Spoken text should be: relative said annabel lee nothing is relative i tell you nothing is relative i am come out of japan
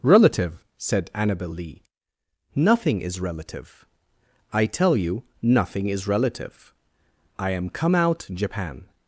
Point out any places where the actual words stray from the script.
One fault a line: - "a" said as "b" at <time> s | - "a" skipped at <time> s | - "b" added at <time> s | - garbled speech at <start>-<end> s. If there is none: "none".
- "of" skipped at 8.2 s